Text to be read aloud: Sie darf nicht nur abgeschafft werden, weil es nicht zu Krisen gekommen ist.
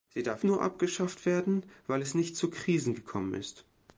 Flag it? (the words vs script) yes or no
yes